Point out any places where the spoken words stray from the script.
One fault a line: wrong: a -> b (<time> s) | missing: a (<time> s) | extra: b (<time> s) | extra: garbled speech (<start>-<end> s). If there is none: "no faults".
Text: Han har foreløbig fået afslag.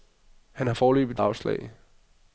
missing: fået (1.2 s)